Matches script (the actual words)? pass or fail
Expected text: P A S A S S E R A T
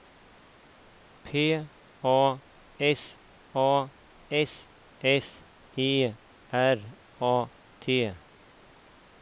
pass